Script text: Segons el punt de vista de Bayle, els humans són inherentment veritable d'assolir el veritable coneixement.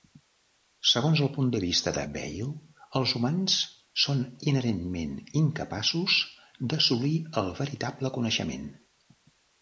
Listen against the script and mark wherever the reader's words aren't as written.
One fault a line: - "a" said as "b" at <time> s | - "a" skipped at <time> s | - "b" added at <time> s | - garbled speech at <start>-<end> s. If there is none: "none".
- "veritable" said as "incapaços" at 5.4 s